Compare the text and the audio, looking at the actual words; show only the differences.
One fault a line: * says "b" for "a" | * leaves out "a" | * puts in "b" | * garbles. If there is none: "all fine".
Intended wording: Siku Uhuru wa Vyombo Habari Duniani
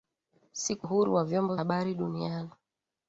all fine